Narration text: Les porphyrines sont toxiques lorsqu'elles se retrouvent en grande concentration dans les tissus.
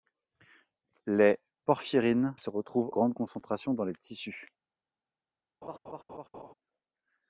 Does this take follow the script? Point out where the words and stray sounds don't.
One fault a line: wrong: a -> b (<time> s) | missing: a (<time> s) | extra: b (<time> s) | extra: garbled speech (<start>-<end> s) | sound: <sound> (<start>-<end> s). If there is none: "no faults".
missing: sont toxiques lorsqu'elles (2.4 s)
missing: en (2.9 s)
sound: laugh (5.6-6.5 s)